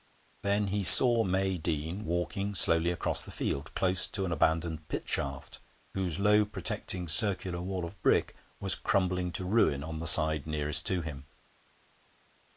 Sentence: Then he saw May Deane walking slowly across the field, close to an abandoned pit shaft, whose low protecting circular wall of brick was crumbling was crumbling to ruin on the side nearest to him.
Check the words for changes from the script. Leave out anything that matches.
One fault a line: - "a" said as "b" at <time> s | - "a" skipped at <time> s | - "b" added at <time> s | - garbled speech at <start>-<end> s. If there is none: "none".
- "was crumbling" skipped at 9.3 s